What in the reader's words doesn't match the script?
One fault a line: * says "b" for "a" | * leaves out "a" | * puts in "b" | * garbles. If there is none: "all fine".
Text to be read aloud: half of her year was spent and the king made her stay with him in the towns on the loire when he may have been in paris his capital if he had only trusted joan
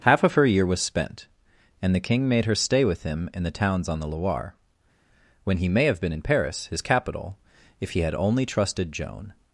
all fine